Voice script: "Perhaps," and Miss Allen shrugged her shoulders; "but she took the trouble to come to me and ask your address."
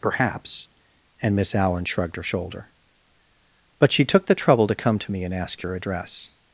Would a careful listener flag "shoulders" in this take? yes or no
yes